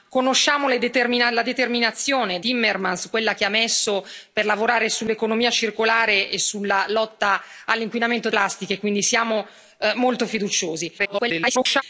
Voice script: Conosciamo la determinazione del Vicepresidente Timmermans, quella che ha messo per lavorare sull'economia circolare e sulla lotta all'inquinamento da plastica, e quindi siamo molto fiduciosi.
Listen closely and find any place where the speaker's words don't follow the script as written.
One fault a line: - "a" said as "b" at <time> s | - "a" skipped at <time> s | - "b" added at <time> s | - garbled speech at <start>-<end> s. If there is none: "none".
- "del Vicepresidente" skipped at 2.4 s
- "da" skipped at 8.3 s
- garbled speech at 11.0-11.8 s